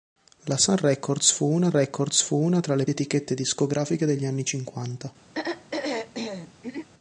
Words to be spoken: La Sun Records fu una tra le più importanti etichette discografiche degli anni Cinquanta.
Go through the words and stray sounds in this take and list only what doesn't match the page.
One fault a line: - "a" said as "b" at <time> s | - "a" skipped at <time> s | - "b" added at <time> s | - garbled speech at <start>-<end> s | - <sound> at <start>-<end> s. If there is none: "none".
- "Records fu una" added at 1.7 s
- "più importanti" skipped at 2.8 s
- throat clearing at 5.3-6.9 s